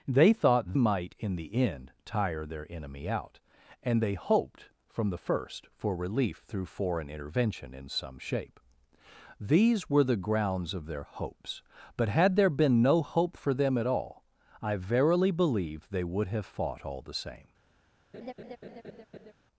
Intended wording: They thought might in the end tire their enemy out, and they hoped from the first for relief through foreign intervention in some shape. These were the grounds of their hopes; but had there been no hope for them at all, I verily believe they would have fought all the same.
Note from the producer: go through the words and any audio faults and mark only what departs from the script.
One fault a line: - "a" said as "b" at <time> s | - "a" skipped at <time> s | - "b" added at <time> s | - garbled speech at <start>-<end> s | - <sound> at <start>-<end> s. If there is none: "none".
- laugh at 18.1-19.3 s